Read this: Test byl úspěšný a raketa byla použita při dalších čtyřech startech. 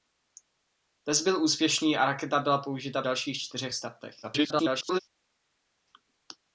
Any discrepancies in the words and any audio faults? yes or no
yes